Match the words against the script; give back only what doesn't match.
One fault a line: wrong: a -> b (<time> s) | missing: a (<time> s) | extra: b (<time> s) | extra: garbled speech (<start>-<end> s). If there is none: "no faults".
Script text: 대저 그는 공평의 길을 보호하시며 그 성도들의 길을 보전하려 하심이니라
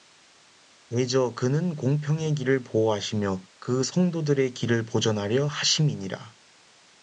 no faults